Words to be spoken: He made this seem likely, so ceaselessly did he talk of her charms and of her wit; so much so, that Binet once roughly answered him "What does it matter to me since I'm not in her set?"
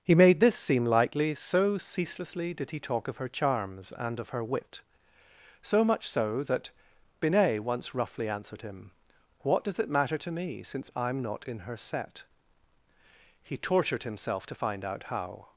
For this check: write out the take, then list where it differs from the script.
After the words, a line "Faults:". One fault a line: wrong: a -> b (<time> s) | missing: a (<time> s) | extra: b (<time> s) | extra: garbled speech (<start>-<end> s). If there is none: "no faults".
He made this seem likely, so ceaselessly did he talk of her charms and of her wit; so much so, that Binet once roughly answered him "What does it matter to me since I'm not in her set?" He tortured himself to find out how
Faults:
extra: He tortured himself to find out how (13.4 s)